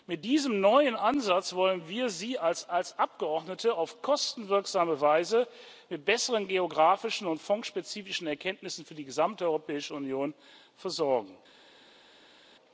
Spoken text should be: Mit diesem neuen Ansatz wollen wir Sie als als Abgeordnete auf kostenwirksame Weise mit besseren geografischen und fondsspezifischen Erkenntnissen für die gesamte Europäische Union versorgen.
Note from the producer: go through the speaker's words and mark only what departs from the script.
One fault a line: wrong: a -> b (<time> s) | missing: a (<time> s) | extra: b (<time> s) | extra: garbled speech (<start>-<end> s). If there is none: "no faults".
no faults